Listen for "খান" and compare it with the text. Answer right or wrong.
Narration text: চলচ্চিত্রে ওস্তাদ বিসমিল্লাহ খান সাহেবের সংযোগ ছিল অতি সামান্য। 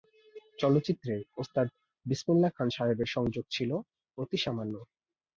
right